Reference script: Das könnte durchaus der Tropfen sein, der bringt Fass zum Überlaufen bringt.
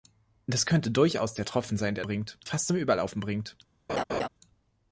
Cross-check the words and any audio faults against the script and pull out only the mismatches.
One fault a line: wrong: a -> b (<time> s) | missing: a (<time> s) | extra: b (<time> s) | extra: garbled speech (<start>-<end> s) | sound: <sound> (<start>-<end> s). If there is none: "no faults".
sound: laugh (3.9-4.3 s)